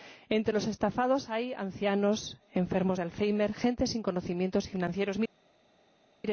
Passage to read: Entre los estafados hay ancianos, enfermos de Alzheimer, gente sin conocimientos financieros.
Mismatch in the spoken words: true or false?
false